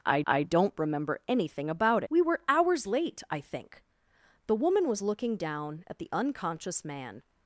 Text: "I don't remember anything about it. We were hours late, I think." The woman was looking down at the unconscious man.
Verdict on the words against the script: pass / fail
fail